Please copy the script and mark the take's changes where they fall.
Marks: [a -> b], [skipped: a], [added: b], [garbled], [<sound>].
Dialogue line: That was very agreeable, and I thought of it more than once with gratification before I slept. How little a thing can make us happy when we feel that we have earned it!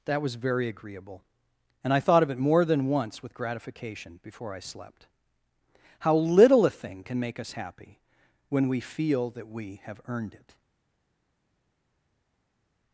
That was very agreeable, and I thought of it more than once with gratification before I slept. How little a thing can make us happy when we feel that we have earned it!